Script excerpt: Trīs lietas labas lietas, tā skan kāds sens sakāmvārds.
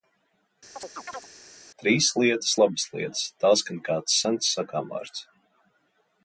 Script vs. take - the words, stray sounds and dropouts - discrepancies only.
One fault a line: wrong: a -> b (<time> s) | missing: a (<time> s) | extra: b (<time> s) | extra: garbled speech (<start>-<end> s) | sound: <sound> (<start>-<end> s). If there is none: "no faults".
sound: chirp (0.8-1.3 s)